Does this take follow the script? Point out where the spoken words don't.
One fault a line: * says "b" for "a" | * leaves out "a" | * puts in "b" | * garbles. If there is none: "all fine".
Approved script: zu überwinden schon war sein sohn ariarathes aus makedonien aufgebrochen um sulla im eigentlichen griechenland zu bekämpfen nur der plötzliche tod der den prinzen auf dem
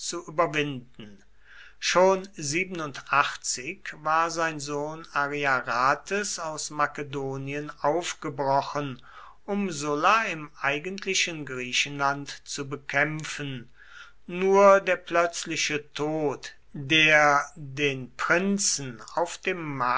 all fine